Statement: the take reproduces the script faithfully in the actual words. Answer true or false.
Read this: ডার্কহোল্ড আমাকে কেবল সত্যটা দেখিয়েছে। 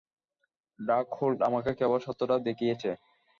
true